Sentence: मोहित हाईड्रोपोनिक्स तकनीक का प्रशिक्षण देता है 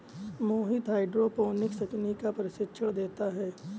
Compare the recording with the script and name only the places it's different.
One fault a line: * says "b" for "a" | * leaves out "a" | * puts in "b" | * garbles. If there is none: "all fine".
all fine